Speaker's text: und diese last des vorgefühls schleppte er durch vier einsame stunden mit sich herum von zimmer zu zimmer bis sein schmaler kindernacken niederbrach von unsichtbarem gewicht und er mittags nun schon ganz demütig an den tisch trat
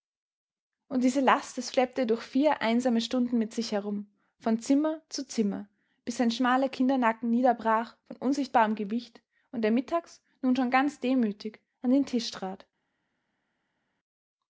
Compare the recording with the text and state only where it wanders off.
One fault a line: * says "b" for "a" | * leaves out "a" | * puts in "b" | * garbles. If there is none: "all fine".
* leaves out "vorgefühls"